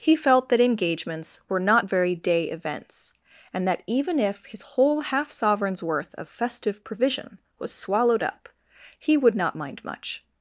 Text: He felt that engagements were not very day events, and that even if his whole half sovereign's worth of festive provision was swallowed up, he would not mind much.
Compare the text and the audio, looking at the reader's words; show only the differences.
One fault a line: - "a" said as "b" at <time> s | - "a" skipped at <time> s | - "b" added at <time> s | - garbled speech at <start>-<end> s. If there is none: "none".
none